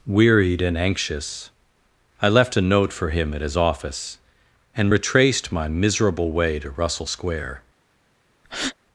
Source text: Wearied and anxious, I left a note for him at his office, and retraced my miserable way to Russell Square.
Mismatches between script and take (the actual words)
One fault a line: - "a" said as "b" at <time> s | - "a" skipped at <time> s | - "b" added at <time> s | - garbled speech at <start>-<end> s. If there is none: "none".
none